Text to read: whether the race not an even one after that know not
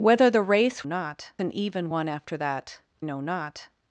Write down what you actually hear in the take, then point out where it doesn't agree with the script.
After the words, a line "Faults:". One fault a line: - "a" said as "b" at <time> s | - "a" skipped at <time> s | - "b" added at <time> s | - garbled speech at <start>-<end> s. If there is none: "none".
whether the race not an even one after that know not
Faults:
none